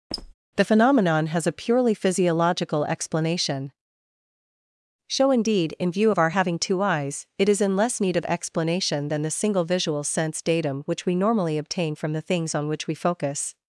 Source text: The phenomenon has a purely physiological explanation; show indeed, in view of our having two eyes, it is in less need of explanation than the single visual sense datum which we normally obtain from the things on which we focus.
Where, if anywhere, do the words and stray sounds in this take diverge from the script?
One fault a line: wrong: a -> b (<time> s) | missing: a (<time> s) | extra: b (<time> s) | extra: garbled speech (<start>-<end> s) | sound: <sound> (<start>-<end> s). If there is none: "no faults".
sound: squeak (0.1-0.3 s)